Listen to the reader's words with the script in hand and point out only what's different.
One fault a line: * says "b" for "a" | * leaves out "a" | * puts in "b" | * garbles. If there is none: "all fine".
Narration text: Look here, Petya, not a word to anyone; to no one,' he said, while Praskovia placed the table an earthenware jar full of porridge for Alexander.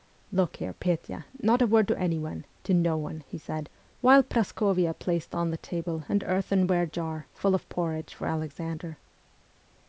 * puts in "on"